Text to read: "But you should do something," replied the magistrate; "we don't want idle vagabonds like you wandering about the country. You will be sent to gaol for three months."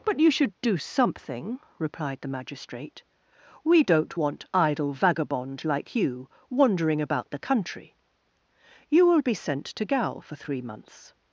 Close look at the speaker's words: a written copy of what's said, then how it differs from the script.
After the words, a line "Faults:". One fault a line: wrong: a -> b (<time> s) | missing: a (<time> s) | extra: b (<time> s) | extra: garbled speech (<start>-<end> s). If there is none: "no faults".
"But you should do something," replied the magistrate; "we don't want idle vagabond like you wandering about the country. You will be sent to gaol for three months."
Faults:
wrong: vagabonds -> vagabond (4.9 s)